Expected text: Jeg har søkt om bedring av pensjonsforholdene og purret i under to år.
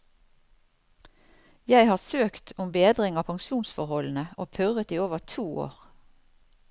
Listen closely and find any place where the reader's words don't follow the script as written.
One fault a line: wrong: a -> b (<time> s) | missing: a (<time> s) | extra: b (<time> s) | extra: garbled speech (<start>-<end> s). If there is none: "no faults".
wrong: under -> over (5.1 s)